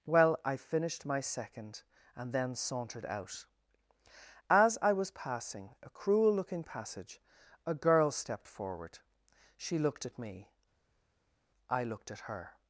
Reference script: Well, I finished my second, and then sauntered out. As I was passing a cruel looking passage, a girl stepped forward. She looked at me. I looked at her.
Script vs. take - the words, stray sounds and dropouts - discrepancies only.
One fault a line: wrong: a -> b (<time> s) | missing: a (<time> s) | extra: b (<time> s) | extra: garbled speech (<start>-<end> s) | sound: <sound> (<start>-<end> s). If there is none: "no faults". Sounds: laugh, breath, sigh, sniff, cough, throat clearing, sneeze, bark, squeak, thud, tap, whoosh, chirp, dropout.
no faults